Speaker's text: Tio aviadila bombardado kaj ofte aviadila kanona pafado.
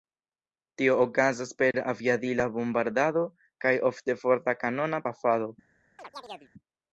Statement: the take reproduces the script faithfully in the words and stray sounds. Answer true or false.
false